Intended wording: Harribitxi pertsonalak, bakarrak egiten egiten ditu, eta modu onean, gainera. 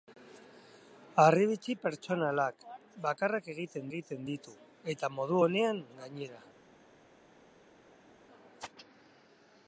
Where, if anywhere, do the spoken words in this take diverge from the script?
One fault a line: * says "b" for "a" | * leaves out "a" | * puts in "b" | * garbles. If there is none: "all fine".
all fine